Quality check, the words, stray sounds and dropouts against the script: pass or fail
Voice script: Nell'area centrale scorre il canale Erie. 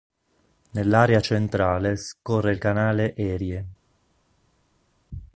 pass